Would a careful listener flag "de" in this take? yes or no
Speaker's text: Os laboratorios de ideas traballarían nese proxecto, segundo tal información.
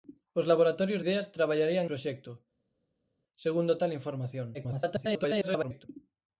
yes